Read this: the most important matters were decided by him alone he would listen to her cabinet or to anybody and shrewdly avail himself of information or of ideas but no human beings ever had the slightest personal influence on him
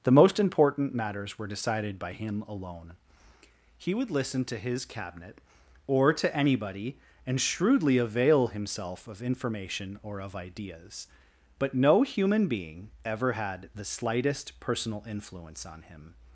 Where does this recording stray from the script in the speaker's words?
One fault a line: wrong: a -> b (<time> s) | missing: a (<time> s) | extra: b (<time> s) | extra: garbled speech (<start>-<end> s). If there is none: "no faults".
wrong: her -> his (4.6 s)
wrong: beings -> being (12.5 s)